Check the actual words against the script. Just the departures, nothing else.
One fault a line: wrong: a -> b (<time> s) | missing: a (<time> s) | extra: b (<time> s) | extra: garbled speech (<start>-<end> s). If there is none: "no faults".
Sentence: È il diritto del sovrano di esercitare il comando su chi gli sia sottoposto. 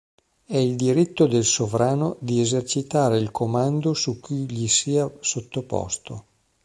no faults